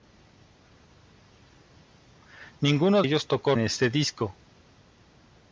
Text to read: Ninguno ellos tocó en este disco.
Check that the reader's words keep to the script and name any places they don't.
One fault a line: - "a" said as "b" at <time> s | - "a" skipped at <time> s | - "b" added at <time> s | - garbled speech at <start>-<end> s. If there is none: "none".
none